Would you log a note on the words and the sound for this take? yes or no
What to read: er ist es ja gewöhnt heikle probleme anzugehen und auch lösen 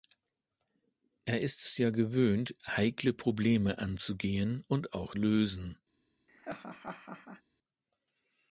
yes